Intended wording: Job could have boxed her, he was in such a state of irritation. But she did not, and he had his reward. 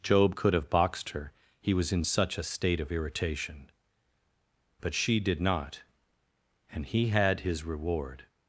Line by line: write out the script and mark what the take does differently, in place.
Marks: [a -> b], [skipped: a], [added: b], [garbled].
Job could have boxed her, he was in such a state of irritation. But she did not, and he had his reward.